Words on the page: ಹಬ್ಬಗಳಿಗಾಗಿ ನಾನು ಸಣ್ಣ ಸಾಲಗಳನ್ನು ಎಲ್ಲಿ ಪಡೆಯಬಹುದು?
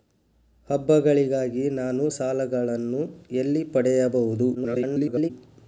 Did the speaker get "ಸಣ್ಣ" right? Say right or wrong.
wrong